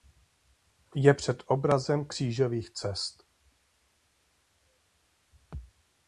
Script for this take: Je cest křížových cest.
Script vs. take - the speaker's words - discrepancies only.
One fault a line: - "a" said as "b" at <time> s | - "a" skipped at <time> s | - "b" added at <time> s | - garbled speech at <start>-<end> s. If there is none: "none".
- "cest" said as "předobrazem" at 1.1 s